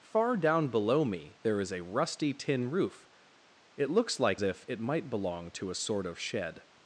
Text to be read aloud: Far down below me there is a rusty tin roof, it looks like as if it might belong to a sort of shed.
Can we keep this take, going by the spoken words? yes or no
no